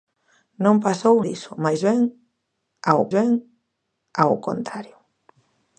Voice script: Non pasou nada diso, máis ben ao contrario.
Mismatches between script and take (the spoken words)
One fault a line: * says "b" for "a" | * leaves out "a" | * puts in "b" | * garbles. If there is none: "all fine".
* leaves out "nada"
* puts in "ben ao"